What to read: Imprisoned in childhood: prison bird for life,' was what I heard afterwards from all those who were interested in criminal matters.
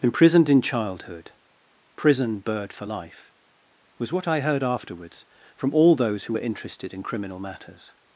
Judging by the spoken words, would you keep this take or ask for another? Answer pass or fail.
pass